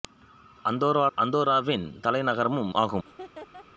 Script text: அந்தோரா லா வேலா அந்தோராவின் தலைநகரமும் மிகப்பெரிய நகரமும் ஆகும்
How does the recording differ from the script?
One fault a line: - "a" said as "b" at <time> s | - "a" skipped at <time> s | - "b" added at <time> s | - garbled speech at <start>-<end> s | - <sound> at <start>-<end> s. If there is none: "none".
- "லா வேலா" skipped at 1.1 s
- "மிகப்பெரிய நகரமும்" skipped at 2.7 s
- laugh at 3.0-3.7 s